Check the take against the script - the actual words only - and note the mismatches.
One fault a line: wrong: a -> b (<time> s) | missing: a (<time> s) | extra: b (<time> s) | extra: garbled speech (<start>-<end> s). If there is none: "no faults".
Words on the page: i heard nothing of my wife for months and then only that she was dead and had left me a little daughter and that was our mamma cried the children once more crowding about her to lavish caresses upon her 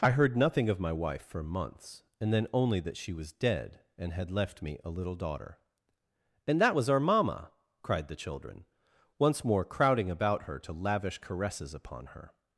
no faults